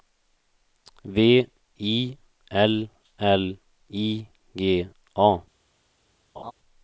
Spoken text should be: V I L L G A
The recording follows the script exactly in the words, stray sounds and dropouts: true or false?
false